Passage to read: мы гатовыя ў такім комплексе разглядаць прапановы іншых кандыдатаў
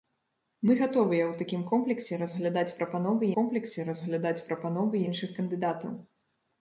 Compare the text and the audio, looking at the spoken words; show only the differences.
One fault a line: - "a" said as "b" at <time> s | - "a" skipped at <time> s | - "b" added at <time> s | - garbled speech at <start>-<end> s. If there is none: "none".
- "комплексе разглядаць прапановы" added at 3.4 s